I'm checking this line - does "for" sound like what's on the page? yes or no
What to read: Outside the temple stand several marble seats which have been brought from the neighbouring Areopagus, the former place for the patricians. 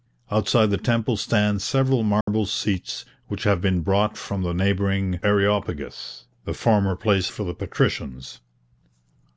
yes